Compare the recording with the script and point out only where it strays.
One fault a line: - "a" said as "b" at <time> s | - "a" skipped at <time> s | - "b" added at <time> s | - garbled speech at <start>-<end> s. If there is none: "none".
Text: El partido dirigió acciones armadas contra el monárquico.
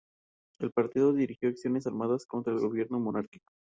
- "gobierno" added at 2.6 s